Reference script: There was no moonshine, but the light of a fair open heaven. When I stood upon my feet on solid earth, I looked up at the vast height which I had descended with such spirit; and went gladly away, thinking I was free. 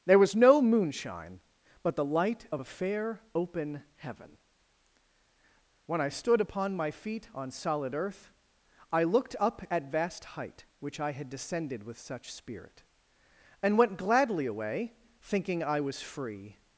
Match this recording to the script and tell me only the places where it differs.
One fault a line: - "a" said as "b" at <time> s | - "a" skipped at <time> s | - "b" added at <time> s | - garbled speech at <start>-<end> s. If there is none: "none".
- "the" skipped at 9.9 s